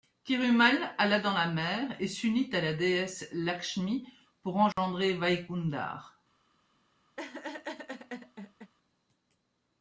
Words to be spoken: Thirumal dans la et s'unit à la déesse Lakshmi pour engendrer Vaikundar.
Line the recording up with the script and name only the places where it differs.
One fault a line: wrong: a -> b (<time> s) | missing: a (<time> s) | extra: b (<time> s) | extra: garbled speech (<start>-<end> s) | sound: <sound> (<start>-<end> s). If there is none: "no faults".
extra: alla (1.0 s)
extra: mer (1.4 s)
sound: dropout (4.7-4.8 s)
sound: laugh (7.2-8.7 s)